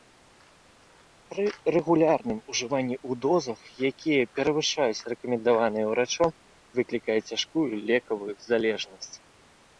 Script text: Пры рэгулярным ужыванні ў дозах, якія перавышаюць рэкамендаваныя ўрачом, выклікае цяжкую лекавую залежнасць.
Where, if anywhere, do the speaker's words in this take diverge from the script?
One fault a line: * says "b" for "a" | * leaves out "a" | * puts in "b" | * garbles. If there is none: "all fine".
all fine